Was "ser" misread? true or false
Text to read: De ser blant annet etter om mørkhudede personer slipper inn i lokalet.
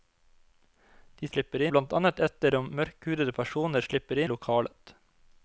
true